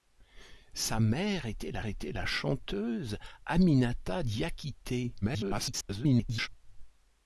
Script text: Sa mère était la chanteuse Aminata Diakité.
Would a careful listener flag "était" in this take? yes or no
no